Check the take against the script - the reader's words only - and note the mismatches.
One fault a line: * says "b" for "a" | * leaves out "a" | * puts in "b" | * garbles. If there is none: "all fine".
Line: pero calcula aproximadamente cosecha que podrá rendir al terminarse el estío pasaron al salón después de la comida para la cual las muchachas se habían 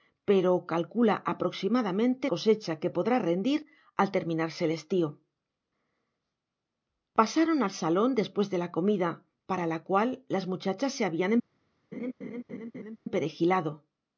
all fine